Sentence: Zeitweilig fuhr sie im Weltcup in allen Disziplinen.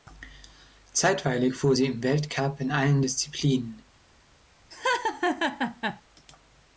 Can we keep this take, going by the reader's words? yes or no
yes